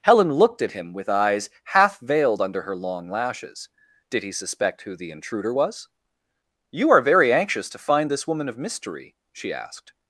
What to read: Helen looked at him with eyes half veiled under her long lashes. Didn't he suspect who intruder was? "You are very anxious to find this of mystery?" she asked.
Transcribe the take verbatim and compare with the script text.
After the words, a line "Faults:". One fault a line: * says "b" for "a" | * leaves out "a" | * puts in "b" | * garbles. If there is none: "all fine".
Helen looked at him with eyes half veiled under her long lashes. Did he suspect who the intruder was? "You are very anxious to find this woman of mystery?" she asked.
Faults:
* says "Did" for "Didn't"
* puts in "the"
* puts in "woman"